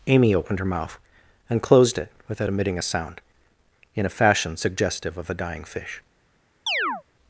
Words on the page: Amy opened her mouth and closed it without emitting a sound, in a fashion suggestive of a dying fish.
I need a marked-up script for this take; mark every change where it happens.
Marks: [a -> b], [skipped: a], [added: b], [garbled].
Amy opened her mouth and closed it without emitting a sound, in a fashion suggestive of a dying fish.